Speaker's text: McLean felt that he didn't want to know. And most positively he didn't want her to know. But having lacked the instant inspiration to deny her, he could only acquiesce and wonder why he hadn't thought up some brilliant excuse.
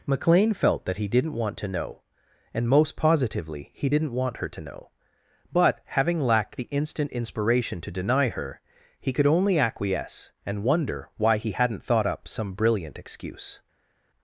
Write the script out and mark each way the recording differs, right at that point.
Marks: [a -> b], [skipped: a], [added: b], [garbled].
McLean felt that he didn't want to know. And most positively he didn't want her to know. But having lacked the instant inspiration to deny her, he could only acquiesce and wonder why he hadn't thought up some brilliant excuse.